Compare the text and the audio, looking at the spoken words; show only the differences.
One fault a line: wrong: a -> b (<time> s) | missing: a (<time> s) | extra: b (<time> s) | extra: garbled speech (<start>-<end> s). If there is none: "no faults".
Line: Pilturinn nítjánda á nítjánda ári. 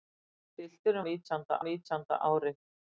no faults